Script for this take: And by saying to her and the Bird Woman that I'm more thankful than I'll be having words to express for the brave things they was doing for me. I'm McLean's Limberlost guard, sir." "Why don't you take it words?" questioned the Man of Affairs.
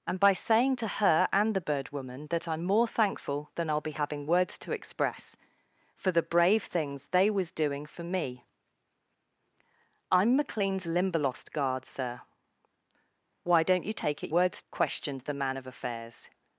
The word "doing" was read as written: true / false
true